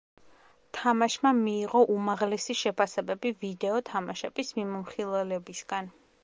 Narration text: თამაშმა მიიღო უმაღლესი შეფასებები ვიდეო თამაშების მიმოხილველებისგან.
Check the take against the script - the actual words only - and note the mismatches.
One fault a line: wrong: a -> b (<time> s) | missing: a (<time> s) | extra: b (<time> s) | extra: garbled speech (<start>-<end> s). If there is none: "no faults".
no faults